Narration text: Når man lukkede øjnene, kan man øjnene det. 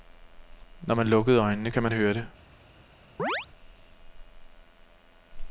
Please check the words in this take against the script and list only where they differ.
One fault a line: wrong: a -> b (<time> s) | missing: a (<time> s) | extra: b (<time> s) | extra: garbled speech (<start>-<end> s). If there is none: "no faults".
wrong: øjnene -> høre (1.9 s)